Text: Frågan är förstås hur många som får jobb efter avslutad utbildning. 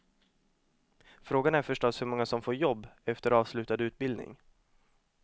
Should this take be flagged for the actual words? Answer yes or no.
no